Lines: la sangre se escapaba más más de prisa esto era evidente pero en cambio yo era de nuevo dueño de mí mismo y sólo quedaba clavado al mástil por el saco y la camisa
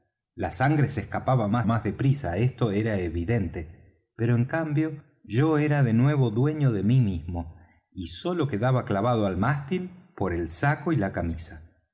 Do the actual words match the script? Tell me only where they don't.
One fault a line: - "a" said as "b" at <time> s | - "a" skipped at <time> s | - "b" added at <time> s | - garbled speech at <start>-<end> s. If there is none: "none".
none